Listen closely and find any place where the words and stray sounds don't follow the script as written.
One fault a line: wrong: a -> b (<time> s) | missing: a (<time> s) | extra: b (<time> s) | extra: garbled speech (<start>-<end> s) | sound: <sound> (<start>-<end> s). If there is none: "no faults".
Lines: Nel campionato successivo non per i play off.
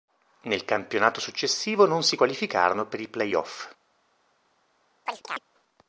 extra: si qualificarono (2.0 s)
sound: chirp (5.1-5.4 s)